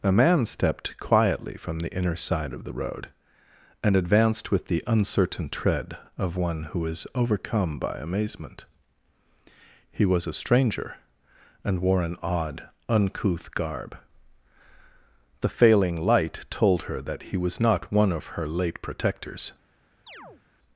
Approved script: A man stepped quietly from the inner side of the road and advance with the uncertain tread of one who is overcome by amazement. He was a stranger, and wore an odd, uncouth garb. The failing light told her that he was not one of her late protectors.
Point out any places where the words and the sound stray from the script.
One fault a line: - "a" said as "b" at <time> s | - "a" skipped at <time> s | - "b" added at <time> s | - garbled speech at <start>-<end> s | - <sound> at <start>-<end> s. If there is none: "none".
- "advance" said as "advanced" at 4.0 s
- chirp at 20.1-20.4 s